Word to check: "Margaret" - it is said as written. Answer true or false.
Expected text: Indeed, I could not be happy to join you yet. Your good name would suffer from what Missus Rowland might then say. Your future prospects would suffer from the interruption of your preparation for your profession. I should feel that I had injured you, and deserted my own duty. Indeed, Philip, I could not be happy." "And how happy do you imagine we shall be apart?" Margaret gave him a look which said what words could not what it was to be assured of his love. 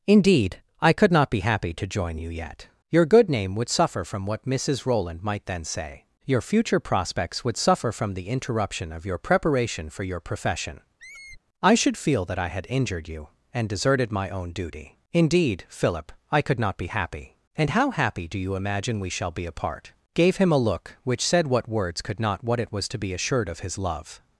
false